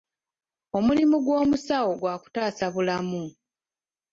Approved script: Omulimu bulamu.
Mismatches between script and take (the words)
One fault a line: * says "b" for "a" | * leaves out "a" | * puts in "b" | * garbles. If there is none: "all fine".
* puts in "gw'omusawo gwa kutaasa"